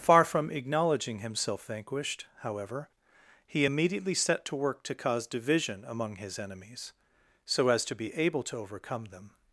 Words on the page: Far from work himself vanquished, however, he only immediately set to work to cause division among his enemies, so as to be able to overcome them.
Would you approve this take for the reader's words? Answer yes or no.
no